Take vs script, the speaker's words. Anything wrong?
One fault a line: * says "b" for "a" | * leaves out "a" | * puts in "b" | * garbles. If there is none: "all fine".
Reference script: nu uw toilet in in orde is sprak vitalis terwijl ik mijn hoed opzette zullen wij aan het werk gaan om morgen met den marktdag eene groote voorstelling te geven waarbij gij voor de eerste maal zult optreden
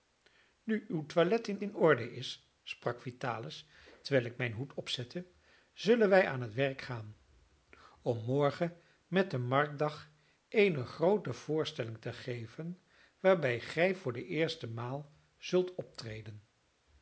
all fine